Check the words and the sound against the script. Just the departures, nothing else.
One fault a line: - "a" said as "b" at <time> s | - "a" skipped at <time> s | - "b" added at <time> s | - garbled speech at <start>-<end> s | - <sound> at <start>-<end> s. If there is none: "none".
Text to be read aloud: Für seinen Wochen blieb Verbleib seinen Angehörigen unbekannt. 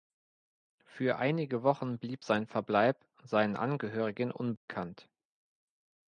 - "seinen" said as "einige" at 1.2 s
- "sein" added at 2.2 s
- dropout at 4.6-4.7 s